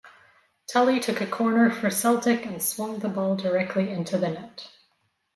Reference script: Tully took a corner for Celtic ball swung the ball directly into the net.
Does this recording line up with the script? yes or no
no